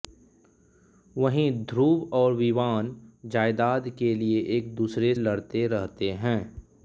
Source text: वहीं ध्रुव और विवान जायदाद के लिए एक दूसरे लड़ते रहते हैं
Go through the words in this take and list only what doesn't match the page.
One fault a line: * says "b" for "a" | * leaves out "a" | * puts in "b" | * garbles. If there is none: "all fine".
all fine